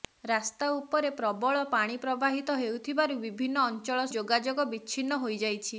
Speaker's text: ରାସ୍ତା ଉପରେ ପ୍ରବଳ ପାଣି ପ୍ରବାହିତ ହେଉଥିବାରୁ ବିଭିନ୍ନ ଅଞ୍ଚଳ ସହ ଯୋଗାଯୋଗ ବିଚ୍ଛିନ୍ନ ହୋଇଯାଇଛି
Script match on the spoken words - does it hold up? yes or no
no